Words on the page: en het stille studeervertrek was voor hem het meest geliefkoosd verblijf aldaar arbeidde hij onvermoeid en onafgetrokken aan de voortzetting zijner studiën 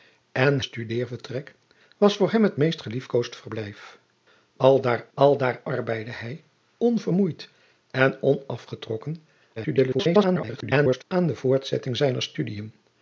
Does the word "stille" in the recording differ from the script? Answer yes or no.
yes